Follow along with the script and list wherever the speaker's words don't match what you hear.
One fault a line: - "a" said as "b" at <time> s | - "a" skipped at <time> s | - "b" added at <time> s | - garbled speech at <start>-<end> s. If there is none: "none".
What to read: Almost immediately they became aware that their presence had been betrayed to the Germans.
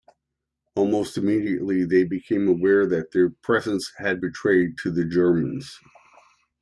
- "been" skipped at 4.2 s